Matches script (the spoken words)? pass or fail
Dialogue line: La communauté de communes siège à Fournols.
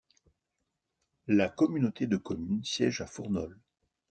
pass